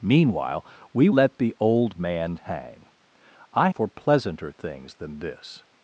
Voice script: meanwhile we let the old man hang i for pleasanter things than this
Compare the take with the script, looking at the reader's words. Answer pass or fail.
pass